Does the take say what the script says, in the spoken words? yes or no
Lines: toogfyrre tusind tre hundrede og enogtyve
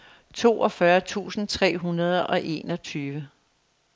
yes